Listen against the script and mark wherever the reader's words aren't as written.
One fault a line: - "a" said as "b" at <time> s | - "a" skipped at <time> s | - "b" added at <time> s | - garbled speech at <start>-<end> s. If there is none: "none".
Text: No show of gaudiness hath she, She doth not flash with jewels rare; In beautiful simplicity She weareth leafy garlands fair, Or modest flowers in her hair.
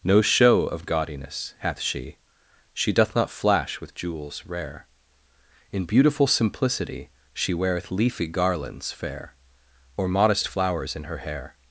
none